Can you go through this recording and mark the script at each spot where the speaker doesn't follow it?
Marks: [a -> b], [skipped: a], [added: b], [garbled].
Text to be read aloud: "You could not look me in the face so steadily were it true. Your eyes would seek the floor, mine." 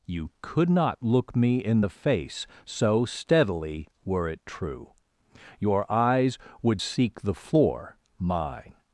"You could not look me in the face so steadily were it true. Your eyes would seek the floor, mine."